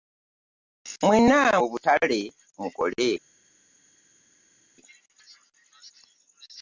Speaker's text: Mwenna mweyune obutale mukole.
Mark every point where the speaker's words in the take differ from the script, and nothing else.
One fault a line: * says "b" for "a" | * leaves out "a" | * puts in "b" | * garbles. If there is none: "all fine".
* leaves out "mweyune"